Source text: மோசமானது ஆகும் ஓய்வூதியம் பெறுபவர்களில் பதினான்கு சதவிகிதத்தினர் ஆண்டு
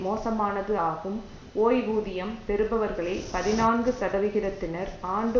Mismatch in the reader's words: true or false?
false